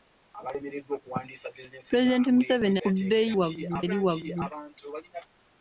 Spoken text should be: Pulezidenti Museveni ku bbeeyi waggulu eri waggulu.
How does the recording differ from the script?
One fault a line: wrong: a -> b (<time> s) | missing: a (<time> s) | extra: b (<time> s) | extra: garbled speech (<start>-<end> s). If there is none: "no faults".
no faults